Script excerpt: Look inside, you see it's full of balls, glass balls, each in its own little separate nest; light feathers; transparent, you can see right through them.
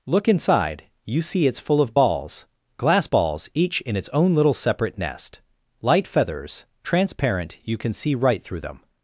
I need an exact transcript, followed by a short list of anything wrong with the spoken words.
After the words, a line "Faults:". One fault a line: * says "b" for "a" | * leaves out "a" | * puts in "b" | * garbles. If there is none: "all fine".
Look inside, you see it's full of balls, glass balls, each in its own little separate nest; light feathers; transparent, you can see right through them.
Faults:
all fine